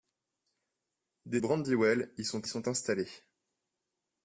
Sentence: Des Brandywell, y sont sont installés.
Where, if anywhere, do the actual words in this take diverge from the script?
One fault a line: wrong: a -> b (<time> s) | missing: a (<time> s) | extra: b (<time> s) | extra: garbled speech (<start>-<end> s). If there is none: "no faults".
no faults